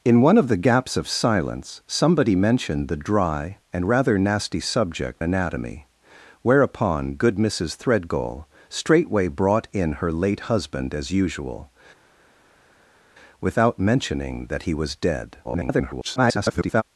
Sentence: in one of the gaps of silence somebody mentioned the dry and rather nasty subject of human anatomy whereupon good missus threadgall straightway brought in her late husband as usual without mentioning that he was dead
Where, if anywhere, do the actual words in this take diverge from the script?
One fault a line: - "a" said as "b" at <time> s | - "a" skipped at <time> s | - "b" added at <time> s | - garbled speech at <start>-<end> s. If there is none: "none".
- "of human" skipped at 5.2 s
- garbled speech at 15.4-16.8 s